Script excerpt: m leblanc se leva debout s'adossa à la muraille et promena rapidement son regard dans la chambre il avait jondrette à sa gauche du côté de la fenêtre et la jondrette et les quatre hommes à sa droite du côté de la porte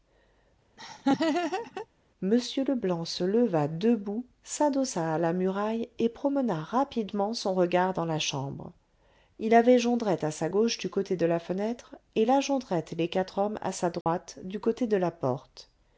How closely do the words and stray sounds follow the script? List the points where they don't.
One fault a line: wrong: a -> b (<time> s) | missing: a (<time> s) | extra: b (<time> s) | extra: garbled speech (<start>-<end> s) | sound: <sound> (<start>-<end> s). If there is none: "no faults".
sound: laugh (0.8-1.9 s)
sound: dropout (14.0-14.1 s)